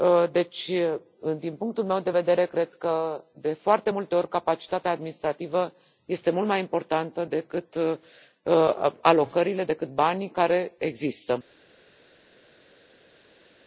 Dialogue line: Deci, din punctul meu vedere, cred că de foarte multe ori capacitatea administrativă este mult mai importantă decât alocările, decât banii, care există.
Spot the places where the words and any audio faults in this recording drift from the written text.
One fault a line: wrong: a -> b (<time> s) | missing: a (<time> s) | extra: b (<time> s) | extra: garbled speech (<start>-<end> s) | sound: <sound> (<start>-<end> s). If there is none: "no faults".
extra: de (2.0 s)